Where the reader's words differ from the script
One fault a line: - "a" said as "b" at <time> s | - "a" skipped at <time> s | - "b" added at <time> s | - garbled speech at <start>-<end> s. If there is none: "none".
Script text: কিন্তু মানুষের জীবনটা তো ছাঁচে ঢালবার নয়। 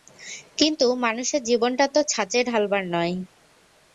none